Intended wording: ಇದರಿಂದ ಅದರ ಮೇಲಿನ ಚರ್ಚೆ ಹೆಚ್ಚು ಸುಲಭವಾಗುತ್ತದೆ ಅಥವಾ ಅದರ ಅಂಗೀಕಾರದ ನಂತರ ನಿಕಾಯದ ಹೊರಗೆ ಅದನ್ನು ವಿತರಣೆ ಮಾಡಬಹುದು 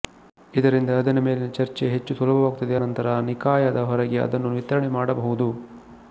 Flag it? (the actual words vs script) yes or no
yes